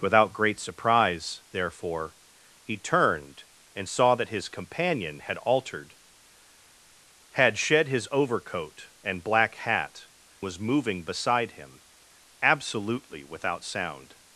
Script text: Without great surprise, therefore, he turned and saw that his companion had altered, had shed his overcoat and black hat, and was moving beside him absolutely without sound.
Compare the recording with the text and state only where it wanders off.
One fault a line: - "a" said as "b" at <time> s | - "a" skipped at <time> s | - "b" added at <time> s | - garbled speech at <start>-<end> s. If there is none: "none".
- "and" skipped at 10.1 s